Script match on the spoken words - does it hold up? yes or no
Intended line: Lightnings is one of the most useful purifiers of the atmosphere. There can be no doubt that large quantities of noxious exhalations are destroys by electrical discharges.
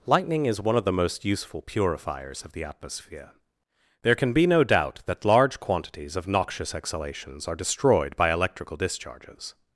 no